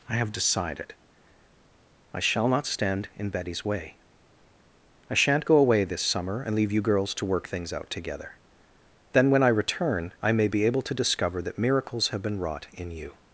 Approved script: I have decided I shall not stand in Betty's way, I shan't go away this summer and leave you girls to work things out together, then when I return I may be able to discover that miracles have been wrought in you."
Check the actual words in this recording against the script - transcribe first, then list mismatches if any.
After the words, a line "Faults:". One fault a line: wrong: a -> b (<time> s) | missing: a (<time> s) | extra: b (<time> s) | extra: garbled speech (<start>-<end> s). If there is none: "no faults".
I have decided I shall not stand in Betty's way, I shan't go away this summer and leave you girls to work things out together, then when I return I may be able to discover that miracles have been wrought in you."
Faults:
no faults